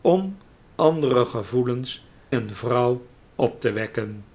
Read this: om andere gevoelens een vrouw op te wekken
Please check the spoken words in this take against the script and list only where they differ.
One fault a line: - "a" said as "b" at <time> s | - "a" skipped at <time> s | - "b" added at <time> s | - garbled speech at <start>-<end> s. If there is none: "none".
none